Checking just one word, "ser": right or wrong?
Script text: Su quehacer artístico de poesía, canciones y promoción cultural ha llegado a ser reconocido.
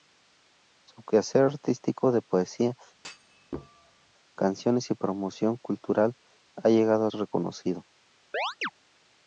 wrong